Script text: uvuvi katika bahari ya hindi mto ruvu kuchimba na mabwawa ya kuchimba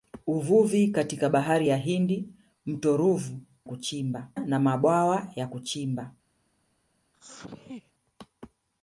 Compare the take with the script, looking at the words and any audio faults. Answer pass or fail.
fail